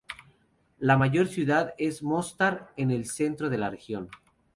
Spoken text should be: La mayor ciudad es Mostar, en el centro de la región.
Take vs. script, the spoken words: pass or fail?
pass